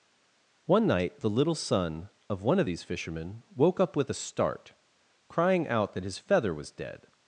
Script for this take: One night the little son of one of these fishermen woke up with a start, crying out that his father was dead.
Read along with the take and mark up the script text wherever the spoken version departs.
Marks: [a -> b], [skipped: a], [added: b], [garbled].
One night the little son of one of these fishermen woke up with a start, crying out that his [father -> feather] was dead.